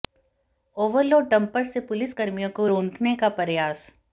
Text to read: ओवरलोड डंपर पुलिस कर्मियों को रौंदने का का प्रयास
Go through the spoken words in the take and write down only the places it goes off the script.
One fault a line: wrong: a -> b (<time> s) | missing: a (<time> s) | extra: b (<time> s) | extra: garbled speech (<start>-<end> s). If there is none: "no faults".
extra: से (1.6 s)
missing: का (3.3 s)